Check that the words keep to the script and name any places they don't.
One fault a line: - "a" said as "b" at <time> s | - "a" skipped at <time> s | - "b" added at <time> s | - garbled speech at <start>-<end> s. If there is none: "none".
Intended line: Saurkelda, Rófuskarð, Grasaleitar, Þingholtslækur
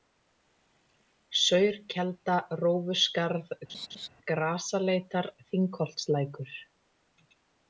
none